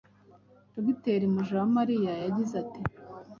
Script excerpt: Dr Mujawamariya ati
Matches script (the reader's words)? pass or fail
fail